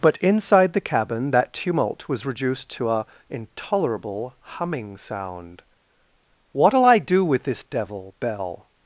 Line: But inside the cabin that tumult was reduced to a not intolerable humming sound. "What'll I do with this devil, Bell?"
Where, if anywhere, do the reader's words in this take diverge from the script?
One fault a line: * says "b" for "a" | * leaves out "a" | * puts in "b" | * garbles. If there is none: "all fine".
* leaves out "not"